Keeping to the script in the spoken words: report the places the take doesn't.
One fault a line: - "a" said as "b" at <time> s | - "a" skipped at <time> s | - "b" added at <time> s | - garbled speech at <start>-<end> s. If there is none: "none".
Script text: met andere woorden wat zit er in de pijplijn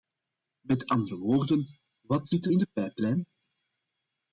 none